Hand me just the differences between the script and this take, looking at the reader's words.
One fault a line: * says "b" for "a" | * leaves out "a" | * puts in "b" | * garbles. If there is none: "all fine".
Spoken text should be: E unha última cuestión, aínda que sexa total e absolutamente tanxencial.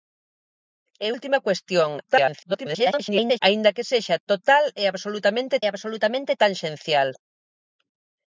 * leaves out "unha"
* garbles
* puts in "absolutamente"